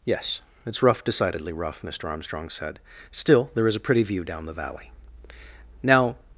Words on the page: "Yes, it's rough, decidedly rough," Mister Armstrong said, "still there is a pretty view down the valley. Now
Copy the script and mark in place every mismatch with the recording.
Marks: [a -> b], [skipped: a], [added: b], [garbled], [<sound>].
"Yes, it's rough, decidedly rough," Mister Armstrong said, "still there is a pretty view down the valley. Now